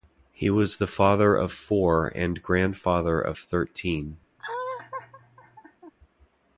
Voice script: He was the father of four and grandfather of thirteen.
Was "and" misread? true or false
false